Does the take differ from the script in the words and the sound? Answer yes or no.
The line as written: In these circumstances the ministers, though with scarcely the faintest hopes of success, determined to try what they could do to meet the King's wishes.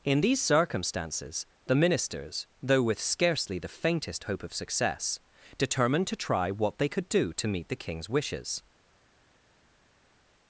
yes